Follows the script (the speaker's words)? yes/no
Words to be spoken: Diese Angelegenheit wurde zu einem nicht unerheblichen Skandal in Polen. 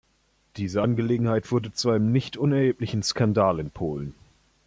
yes